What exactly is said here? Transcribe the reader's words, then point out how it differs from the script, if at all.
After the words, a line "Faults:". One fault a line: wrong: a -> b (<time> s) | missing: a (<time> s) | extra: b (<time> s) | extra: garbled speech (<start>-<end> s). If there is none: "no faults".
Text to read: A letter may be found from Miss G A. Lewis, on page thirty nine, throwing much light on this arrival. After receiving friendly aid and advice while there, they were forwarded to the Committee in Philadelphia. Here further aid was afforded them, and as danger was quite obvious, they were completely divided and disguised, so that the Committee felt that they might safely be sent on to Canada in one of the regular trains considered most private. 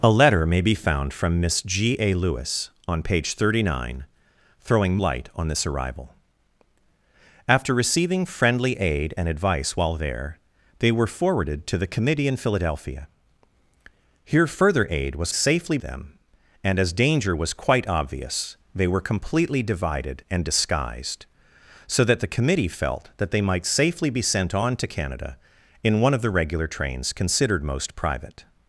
A letter may be found from Miss G A. Lewis, on page thirty nine, throwing light on this arrival. After receiving friendly aid and advice while there, they were forwarded to the Committee in Philadelphia. Here further aid was safely them, and as danger was quite obvious, they were completely divided and disguised, so that the Committee felt that they might safely be sent on to Canada in one of the regular trains considered most private.
Faults:
missing: much (5.0 s)
wrong: afforded -> safely (15.3 s)